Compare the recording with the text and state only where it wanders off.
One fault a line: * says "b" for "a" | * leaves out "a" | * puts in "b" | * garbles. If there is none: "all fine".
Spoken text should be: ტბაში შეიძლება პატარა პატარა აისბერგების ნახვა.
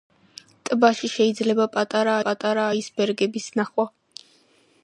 all fine